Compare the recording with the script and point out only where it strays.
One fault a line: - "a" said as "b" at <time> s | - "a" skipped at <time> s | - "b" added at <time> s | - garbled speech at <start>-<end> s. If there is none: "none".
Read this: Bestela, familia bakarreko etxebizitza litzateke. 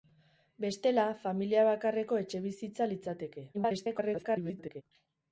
- garbled speech at 3.5-4.8 s